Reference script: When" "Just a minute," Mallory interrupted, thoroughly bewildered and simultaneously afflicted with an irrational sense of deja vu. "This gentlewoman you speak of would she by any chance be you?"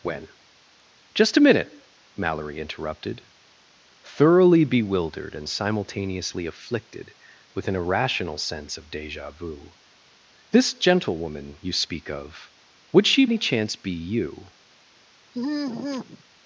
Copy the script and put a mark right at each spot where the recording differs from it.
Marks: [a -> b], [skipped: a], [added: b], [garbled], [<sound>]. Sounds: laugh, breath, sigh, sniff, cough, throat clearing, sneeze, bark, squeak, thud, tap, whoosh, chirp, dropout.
When" "Just a minute," Mallory interrupted, thoroughly bewildered and simultaneously afflicted with an irrational sense of deja vu. "This gentlewoman you speak of would she [skipped: by] any chance be you?" [sigh]